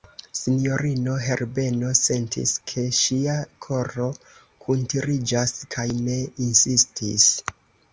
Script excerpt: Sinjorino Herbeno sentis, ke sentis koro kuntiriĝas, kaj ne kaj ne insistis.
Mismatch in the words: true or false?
true